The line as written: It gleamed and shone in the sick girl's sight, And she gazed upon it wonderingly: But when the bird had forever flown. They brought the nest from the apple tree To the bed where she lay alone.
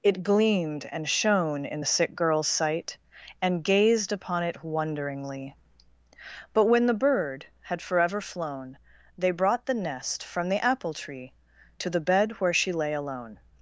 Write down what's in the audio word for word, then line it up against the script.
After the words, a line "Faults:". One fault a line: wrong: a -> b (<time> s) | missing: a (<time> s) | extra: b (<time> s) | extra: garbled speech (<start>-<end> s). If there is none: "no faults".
It gleamed and shone in the sick girl's sight, And gazed upon it wonderingly: But when the bird had forever flown. They brought the nest from the apple tree To the bed where she lay alone.
Faults:
missing: she (3.6 s)